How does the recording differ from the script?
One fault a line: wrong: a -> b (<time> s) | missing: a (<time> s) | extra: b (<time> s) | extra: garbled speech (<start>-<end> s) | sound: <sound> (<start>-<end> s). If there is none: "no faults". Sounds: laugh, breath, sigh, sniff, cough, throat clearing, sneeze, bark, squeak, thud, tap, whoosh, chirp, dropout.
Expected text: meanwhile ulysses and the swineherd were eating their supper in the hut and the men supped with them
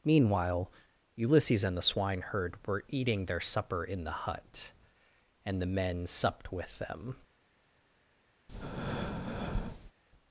sound: breath (8.5-9.9 s)